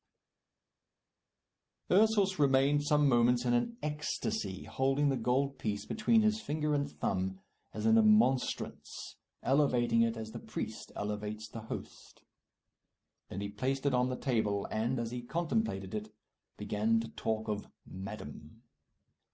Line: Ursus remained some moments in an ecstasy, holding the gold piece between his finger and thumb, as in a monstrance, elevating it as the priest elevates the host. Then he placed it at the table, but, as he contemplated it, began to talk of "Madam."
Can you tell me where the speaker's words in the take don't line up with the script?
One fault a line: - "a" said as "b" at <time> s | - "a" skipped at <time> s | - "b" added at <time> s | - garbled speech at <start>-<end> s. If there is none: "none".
- "at" said as "on" at 13.9 s
- "but" said as "and" at 14.7 s